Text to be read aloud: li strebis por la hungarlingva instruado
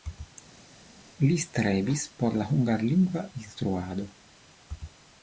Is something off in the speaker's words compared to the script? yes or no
no